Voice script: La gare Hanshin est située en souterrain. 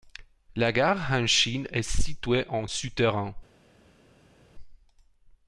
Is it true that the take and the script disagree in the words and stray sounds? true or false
false